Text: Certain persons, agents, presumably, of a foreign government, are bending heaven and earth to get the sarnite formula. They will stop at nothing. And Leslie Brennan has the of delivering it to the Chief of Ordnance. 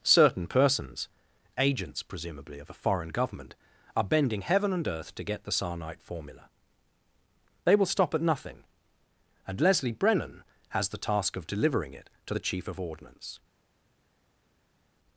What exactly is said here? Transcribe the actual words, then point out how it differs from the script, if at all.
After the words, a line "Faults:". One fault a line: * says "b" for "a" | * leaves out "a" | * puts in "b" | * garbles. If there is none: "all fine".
Certain persons, agents, presumably, of a foreign government, are bending heaven and earth to get the sarnite formula. They will stop at nothing. And Leslie Brennan has the task of delivering it to the Chief of Ordnance.
Faults:
* puts in "task"